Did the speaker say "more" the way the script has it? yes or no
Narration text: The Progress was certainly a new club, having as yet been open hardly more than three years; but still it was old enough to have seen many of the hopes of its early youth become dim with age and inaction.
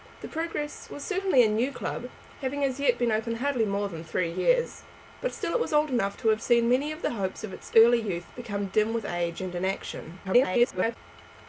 yes